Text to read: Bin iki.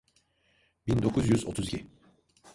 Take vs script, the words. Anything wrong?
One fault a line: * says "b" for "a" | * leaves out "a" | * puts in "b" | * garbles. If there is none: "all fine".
* puts in "dokuz yüz otuz"